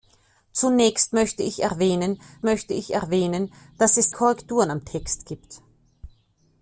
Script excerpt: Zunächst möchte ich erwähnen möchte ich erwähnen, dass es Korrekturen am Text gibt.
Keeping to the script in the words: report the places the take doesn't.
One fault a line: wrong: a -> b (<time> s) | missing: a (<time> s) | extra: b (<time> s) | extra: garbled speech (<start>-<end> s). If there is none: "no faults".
no faults